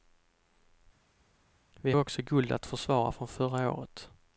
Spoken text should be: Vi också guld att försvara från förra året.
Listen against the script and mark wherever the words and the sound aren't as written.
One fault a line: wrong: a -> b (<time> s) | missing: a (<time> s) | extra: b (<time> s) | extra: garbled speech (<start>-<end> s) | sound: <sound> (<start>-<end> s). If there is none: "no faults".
no faults